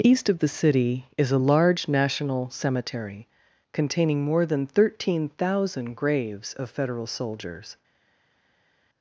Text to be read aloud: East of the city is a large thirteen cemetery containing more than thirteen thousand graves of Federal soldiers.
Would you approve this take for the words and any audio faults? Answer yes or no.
no